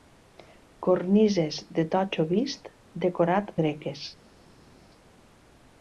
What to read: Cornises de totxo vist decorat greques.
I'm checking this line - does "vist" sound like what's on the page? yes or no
yes